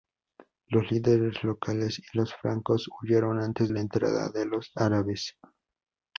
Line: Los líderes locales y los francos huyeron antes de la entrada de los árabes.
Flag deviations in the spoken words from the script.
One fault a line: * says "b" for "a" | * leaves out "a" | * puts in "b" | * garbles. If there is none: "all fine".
* leaves out "de"